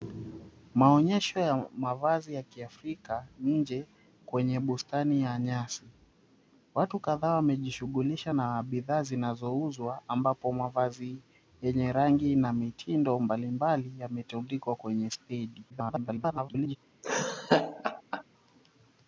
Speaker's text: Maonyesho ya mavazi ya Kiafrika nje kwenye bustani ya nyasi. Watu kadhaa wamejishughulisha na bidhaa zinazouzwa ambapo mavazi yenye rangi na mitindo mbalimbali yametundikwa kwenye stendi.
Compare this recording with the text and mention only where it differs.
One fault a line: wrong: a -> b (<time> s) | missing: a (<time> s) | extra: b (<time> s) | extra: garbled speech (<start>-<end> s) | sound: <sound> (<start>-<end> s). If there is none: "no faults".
extra: garbled speech (15.7-16.8 s)
sound: laugh (17.0-18.2 s)